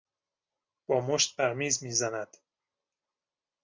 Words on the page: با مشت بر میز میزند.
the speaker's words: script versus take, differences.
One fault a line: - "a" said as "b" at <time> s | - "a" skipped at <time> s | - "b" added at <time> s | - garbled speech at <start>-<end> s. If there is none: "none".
none